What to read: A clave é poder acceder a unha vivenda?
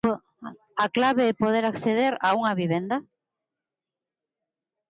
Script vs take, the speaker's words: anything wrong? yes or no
no